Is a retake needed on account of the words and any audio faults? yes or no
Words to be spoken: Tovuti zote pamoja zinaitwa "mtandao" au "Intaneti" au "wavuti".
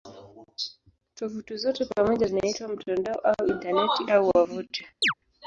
yes